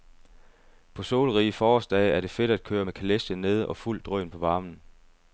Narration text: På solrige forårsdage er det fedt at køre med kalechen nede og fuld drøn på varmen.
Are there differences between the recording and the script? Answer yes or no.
no